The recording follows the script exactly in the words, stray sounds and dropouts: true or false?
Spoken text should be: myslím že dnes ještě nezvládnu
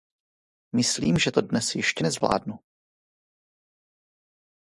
false